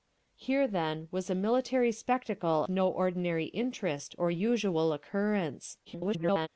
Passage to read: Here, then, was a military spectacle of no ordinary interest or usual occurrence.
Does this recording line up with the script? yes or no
no